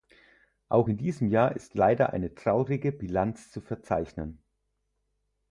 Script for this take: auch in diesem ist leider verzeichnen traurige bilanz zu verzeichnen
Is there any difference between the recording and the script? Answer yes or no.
yes